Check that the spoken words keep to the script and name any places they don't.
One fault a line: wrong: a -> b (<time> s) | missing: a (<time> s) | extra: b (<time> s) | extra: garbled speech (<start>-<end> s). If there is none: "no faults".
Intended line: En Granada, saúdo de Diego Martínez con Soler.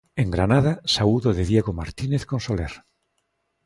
no faults